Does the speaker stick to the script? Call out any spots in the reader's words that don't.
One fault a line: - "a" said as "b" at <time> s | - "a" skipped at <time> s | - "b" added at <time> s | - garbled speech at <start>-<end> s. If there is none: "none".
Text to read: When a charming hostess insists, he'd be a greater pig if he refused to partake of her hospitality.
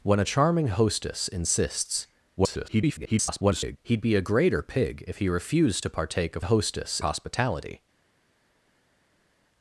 - garbled speech at 2.4-3.8 s
- "her" said as "hostess" at 6.4 s